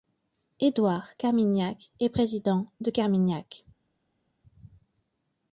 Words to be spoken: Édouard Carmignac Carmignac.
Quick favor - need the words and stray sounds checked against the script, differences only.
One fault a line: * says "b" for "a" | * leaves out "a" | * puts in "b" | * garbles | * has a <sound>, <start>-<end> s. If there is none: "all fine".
* puts in "est Président de"